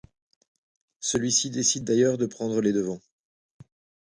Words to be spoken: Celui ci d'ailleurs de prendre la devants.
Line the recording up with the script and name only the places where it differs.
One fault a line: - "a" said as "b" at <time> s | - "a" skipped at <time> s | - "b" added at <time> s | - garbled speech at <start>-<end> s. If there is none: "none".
- "décide" added at 1.5 s
- "la" said as "les" at 2.6 s